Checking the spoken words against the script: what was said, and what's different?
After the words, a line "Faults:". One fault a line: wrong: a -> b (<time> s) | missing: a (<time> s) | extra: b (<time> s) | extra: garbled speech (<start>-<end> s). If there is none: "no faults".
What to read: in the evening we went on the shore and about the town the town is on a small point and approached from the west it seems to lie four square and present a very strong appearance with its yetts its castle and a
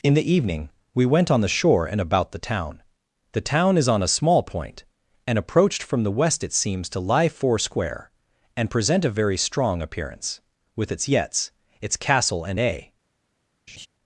in the evening we went on the shore and about the town the town is on a small point and approached from the west it seems to lie four square and present a very strong appearance with its yetts its castle and a
Faults:
no faults